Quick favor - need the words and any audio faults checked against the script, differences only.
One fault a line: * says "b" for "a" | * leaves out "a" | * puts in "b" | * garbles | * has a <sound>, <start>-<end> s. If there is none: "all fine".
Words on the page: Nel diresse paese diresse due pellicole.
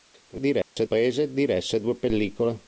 * has a dropout, 0.6-0.8 s